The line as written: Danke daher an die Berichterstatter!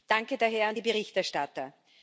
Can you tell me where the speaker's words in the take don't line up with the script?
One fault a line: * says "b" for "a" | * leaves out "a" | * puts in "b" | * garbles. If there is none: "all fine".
all fine